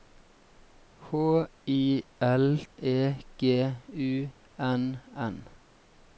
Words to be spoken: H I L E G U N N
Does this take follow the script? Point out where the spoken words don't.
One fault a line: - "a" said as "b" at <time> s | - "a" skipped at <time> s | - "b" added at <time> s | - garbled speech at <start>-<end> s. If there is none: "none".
none